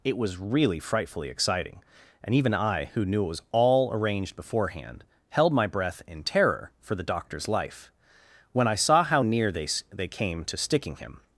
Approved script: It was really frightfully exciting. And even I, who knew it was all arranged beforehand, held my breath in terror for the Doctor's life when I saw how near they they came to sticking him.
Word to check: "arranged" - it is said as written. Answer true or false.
true